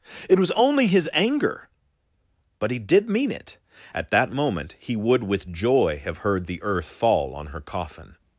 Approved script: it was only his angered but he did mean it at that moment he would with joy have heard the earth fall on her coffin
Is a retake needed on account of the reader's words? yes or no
yes